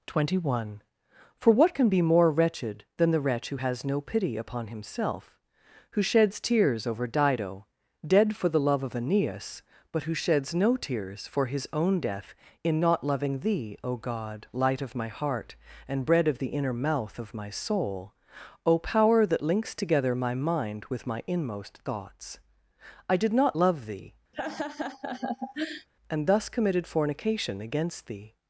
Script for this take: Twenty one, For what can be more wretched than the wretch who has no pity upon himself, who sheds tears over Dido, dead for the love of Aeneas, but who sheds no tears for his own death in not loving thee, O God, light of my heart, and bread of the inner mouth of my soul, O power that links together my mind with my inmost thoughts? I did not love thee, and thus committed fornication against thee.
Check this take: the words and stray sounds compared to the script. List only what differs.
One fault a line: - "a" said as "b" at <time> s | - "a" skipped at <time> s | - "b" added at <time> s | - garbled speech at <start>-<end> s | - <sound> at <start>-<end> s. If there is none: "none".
- laugh at 24.3-25.9 s